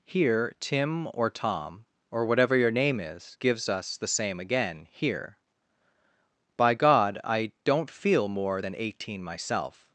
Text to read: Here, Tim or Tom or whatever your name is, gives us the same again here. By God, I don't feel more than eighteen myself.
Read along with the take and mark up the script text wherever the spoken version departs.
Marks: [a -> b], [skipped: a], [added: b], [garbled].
Here, Tim or Tom or whatever your name is, gives us the same again here. By God, I don't feel more than eighteen myself.